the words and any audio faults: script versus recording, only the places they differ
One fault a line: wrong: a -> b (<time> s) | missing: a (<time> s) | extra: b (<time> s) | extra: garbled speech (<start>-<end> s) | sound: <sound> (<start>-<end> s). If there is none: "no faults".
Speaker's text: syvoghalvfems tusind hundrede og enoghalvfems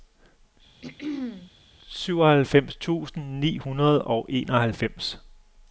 sound: throat clearing (0.8-1.5 s)
extra: ni (3.4 s)